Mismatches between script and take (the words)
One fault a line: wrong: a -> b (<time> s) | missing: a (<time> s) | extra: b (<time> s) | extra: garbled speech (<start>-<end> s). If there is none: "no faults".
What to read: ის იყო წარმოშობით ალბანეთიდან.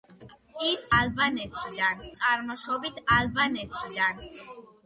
wrong: იყო -> ალბანეთიდან (1.0 s)